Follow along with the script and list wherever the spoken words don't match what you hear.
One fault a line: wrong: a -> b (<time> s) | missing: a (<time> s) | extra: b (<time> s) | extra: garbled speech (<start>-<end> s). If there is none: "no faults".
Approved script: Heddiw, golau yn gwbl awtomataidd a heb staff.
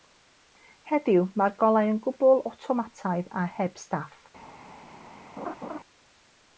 extra: mae'r (1.4 s)